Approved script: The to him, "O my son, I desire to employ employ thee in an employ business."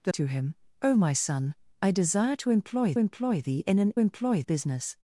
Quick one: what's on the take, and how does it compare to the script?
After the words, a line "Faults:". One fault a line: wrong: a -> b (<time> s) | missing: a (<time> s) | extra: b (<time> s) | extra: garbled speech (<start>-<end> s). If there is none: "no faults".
The to him, "O my son, I desire to employ employ thee in an employ business."
Faults:
no faults